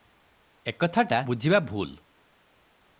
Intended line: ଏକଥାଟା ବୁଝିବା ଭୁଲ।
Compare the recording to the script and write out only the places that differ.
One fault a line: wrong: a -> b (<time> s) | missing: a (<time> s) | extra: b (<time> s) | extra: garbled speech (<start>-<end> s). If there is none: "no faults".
no faults